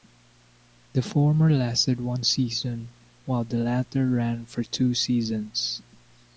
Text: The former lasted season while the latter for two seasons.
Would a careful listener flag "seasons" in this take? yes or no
no